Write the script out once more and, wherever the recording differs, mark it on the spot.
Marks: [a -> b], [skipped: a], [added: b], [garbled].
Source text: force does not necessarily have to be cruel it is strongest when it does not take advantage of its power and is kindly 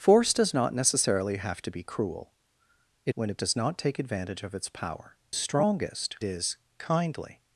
force does not necessarily have to be cruel it [skipped: is strongest] when it does not take advantage of its power [and -> strongest] is kindly